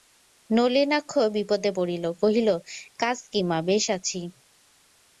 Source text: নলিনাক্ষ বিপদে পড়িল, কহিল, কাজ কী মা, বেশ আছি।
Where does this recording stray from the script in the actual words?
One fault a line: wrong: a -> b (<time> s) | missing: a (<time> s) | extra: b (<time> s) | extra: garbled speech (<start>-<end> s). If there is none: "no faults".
no faults